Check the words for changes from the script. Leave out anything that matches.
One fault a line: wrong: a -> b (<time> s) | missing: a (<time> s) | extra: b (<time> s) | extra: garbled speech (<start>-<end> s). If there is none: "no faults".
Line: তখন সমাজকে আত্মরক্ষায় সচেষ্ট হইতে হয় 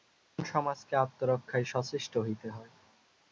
no faults